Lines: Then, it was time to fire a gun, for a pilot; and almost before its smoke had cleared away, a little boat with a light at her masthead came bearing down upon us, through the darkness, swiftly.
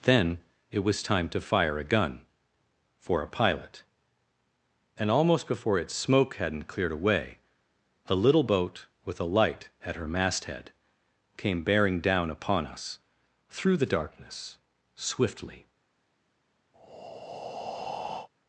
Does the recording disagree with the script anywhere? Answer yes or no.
yes